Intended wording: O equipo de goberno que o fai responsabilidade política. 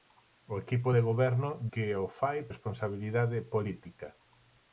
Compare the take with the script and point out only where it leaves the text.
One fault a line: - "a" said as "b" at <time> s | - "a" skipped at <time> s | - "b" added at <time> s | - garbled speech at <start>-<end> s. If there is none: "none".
none